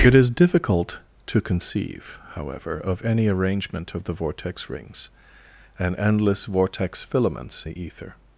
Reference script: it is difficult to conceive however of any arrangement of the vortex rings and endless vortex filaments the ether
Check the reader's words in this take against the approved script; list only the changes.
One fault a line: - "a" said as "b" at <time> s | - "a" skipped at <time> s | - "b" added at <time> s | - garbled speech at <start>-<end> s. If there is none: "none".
none